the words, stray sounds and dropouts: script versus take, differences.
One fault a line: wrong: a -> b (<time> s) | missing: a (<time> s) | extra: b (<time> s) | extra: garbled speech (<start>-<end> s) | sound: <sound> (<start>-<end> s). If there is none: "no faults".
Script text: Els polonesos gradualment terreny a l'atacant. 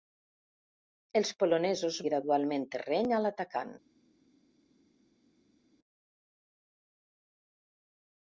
no faults